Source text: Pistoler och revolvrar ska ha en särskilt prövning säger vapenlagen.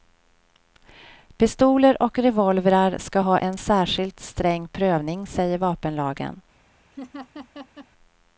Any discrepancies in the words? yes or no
yes